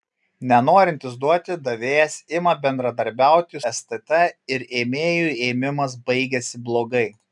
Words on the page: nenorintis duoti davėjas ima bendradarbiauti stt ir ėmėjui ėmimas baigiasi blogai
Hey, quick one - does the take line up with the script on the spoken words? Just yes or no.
yes